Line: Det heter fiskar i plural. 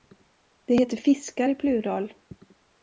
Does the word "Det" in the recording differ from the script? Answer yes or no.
no